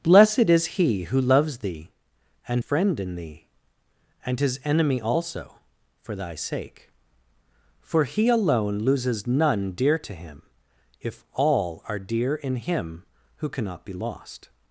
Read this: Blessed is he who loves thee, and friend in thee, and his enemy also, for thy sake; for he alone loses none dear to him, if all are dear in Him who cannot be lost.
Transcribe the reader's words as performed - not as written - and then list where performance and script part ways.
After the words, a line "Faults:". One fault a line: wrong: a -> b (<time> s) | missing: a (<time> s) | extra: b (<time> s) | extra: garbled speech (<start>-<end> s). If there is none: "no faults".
Blessed is he who loves thee, and friend in thee, and his enemy also, for thy sake; for he alone loses none dear to him, if all are dear in Him who cannot be lost.
Faults:
no faults